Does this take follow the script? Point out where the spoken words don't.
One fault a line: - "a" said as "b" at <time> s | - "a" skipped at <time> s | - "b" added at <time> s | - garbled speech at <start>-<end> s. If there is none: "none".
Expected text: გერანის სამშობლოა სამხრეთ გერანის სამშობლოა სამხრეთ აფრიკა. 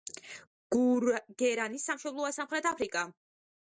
- "გერანის სამშობლოა სამხრეთ" skipped at 2.8 s